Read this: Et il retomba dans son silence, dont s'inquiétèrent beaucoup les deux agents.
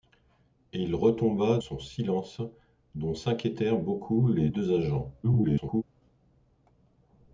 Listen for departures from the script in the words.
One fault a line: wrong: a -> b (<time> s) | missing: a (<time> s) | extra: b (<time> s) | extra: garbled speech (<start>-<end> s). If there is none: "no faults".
missing: dans (1.6 s)
extra: garbled speech (5.2-5.8 s)